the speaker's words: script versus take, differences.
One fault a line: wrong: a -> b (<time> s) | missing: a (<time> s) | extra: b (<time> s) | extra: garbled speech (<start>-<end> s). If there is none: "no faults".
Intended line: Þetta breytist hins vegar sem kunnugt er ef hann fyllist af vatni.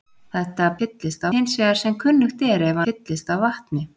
wrong: breytist -> fyllist (0.8 s)
missing: hann (2.8 s)